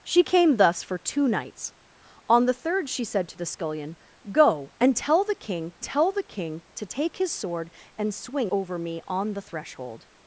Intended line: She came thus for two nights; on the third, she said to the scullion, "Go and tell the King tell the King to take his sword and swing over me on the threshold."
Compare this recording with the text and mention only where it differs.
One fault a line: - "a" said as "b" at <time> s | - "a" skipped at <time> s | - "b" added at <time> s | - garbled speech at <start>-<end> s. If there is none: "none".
none